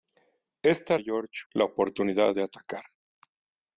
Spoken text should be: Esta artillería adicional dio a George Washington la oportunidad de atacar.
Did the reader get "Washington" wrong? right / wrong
wrong